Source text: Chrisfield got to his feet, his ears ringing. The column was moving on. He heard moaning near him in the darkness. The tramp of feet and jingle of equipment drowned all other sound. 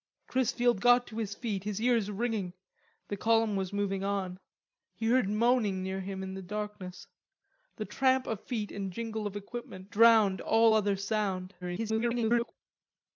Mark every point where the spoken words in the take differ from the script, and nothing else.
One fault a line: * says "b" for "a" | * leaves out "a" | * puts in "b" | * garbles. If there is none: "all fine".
* garbles